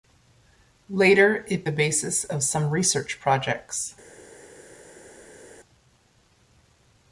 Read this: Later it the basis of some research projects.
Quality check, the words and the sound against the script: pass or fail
pass